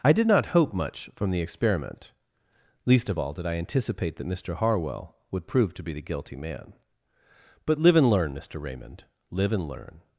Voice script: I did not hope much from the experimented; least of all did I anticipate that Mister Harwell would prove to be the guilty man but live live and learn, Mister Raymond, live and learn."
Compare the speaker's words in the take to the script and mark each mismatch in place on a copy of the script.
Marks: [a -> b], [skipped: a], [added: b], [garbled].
I did not hope much from the [experimented; -> experiment] least of all did I anticipate that Mister Harwell would prove to be the guilty man but live [skipped: live] and learn, Mister Raymond, live and learn."